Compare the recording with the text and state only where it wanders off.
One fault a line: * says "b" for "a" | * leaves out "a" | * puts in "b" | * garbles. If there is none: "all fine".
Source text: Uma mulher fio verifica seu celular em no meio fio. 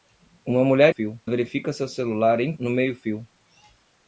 all fine